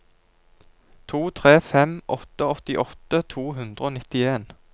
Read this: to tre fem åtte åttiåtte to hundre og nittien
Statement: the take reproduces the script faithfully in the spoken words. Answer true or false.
true